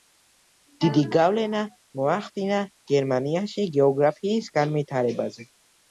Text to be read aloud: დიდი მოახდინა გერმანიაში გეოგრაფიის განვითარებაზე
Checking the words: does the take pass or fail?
fail